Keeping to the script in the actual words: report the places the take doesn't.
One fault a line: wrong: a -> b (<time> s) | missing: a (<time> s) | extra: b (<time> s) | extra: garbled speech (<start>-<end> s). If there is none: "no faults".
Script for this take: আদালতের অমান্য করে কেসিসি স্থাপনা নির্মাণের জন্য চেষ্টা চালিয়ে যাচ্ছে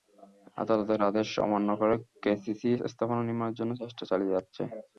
extra: আদেশ (1.1 s)